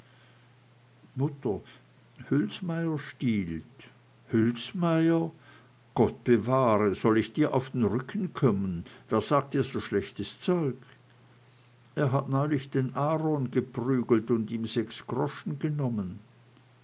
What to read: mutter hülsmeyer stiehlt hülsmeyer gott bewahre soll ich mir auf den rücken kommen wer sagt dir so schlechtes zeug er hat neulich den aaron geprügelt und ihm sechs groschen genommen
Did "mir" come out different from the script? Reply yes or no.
yes